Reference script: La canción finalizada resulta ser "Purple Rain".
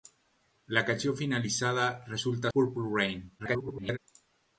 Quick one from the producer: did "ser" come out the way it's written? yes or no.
no